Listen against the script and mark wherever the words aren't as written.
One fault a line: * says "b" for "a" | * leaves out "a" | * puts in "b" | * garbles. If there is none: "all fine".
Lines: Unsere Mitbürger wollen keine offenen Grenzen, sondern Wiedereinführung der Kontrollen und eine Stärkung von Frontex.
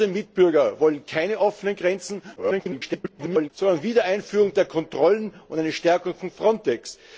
* garbles